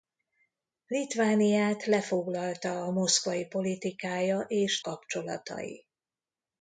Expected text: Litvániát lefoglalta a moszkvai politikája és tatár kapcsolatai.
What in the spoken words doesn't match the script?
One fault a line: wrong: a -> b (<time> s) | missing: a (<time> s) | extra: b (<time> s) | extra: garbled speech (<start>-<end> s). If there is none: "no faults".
missing: tatár (4.8 s)